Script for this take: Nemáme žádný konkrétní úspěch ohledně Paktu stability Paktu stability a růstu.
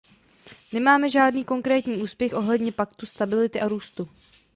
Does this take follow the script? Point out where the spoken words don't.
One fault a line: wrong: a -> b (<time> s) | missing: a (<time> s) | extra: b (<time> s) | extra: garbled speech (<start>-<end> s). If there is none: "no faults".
missing: Paktu stability (3.6 s)